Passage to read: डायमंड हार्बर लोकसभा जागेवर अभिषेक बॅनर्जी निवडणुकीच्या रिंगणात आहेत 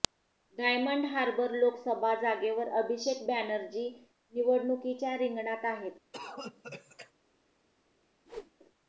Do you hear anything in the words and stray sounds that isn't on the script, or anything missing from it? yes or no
yes